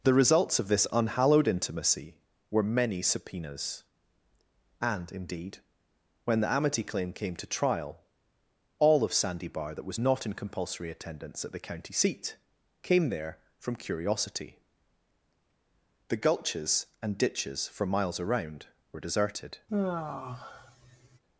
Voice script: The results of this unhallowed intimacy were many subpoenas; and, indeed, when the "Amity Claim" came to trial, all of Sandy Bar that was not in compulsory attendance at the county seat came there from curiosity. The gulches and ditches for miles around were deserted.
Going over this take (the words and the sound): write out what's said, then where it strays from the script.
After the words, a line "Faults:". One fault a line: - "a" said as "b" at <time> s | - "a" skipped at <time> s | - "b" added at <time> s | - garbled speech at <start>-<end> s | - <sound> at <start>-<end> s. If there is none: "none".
The results of this unhallowed intimacy were many subpoenas; and, indeed, when the "Amity Claim" came to trial, all of Sandy Bar that was not in compulsory attendance at the county seat came there from curiosity. The gulches and ditches for miles around were deserted.
Faults:
- sigh at 19.7-21.2 s